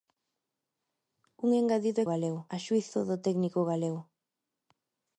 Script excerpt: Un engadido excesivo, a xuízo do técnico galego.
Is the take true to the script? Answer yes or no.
no